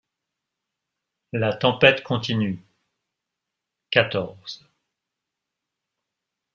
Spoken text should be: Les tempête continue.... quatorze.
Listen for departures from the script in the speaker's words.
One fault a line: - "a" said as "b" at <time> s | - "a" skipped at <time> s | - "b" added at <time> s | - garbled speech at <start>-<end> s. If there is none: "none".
- "Les" said as "La" at 1.3 s